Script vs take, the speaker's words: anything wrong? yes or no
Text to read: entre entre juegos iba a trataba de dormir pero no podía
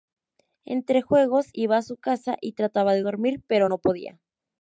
yes